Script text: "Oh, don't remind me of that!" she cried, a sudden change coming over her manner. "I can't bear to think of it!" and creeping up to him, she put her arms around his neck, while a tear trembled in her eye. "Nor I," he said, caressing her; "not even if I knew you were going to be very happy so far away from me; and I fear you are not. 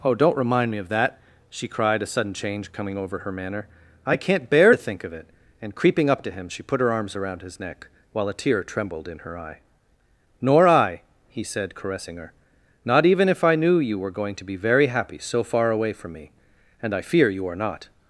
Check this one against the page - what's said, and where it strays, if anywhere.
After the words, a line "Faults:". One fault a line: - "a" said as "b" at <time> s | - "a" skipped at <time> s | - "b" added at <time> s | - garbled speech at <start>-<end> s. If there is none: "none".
"Oh, don't remind me of that!" she cried, a sudden change coming over her manner. "I can't bear to think of it!" and creeping up to him, she put her arms around his neck, while a tear trembled in her eye. "Nor I," he said, caressing her; "not even if I knew you were going to be very happy so far away from me; and I fear you are not.
Faults:
none